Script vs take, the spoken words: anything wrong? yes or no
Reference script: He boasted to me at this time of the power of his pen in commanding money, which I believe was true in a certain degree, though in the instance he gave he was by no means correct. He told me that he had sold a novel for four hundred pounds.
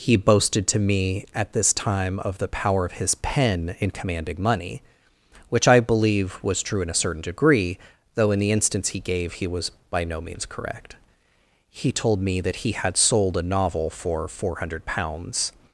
no